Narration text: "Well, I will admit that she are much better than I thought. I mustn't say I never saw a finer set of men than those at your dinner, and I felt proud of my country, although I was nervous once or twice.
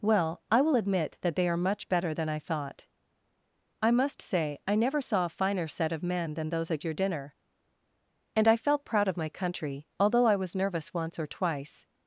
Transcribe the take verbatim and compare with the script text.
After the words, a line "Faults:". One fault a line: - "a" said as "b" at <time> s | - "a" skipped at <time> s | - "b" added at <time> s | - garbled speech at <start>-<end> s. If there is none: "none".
"Well, I will admit that they are much better than I thought. I must say I never saw a finer set of men than those at your dinner, and I felt proud of my country, although I was nervous once or twice.
Faults:
- "she" said as "they" at 1.4 s
- "mustn't" said as "must" at 3.9 s